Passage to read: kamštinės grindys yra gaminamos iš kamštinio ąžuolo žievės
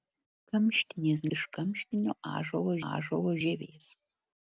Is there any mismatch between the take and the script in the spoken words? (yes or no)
yes